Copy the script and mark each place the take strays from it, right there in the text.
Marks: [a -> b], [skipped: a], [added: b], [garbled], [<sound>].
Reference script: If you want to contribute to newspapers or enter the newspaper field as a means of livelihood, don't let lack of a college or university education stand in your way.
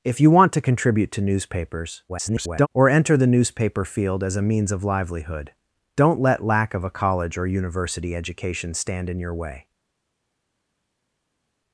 If you want to contribute to newspapers [garbled] or enter the newspaper field as a means of livelihood, don't let lack of a college or university education stand in your way.